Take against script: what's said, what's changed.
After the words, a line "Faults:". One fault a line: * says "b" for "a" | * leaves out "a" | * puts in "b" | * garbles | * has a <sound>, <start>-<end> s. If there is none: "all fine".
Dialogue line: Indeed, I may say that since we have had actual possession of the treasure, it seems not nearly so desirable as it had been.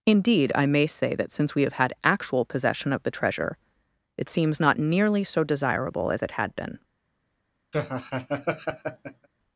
Indeed, I may say that since we have had actual possession of the treasure, it seems not nearly so desirable as it had been.
Faults:
* has a laugh, 7.7-9.3 s